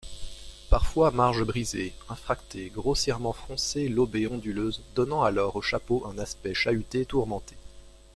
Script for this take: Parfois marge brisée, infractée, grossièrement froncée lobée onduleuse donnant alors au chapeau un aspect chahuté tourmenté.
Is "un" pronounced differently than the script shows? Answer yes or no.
no